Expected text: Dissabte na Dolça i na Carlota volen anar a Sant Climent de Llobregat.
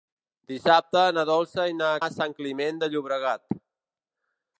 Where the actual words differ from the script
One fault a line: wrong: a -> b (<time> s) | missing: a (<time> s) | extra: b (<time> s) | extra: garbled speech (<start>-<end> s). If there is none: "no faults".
missing: Carlota volen anar (1.9 s)